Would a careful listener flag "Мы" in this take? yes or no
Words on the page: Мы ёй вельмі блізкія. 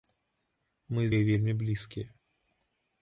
no